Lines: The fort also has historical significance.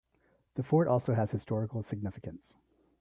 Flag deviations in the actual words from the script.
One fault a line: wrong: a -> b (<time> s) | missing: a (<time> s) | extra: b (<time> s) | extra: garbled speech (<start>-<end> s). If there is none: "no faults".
no faults